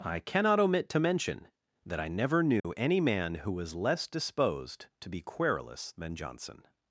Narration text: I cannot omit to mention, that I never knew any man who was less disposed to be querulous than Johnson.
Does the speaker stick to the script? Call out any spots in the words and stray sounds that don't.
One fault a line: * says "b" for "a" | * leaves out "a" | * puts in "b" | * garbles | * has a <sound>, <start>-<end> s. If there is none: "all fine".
* has a dropout, 2.6-2.6 s